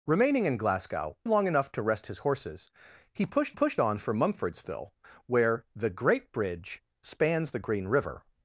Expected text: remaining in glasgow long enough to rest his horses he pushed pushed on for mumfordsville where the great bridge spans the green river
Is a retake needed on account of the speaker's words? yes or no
no